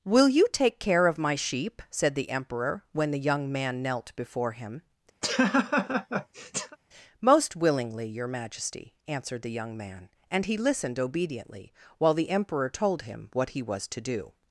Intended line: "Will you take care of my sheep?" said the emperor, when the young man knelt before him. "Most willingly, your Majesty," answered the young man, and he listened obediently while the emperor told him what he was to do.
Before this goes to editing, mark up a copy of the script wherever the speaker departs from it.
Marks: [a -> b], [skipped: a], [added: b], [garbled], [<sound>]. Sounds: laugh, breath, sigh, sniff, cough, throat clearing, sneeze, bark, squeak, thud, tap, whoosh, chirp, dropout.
"Will you take care of my sheep?" said the emperor, when the young man knelt before him. [laugh] "Most willingly, your Majesty," answered the young man, and he listened obediently while the emperor told him what he was to do.